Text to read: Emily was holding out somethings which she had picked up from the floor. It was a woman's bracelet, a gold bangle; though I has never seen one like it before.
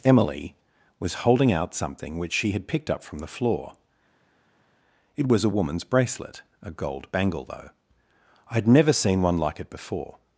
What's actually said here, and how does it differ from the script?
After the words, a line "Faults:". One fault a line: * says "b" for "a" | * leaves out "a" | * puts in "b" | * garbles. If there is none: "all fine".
Emily was holding out something which she had picked up from the floor. It was a woman's bracelet, a gold bangle; though I had never seen one like it before.
Faults:
* says "something" for "somethings"
* says "had" for "has"